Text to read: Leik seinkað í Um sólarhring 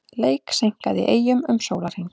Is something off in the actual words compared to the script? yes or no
yes